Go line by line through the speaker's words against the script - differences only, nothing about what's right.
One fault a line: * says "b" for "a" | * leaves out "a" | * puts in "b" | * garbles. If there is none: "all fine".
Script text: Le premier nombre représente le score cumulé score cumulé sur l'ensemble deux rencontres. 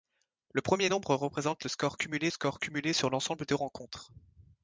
all fine